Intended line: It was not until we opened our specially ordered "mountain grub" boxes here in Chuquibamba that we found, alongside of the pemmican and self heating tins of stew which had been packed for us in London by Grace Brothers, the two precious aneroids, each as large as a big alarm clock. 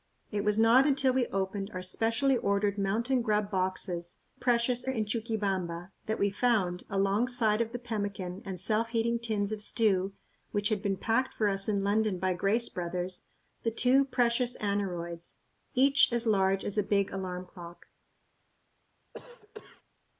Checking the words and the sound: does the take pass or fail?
fail